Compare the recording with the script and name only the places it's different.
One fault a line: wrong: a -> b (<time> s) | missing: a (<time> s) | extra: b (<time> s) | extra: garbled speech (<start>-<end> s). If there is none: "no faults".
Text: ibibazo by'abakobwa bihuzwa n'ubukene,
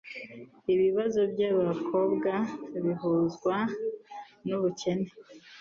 no faults